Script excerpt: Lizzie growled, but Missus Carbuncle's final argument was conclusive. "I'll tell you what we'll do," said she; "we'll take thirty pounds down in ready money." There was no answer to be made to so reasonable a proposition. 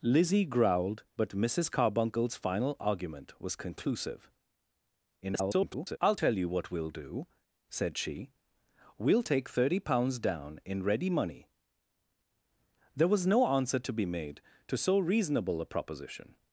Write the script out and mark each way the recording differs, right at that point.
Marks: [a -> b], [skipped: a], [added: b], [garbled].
Lizzie growled, but Missus Carbuncle's final argument was conclusive. [garbled] "I'll tell you what we'll do," said she; "we'll take thirty pounds down in ready money." There was no answer to be made to so reasonable a proposition.